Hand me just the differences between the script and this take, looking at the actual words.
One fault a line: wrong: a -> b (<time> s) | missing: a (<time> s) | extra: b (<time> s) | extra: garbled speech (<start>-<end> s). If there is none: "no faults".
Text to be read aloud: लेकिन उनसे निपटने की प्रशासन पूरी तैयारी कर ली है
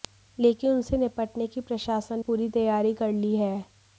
no faults